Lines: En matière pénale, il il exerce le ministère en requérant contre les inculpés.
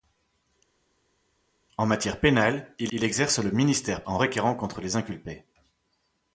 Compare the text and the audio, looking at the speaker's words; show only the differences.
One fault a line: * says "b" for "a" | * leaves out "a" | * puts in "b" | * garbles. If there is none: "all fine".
all fine